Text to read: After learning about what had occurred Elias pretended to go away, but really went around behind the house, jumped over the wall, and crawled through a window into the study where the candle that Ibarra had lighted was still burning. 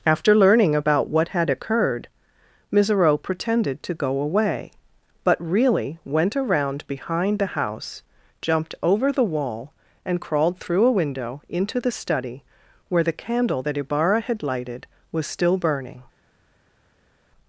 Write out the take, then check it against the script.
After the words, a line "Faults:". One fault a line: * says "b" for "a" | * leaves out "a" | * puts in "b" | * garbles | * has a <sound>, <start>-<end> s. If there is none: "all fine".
After learning about what had occurred Misero pretended to go away, but really went around behind the house, jumped over the wall, and crawled through a window into the study where the candle that Ibarra had lighted was still burning.
Faults:
* says "Misero" for "Elias"